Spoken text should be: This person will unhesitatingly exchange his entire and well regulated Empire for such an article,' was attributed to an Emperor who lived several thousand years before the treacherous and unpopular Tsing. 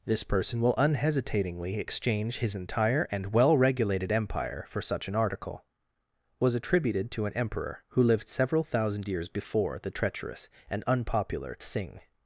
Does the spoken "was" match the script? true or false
true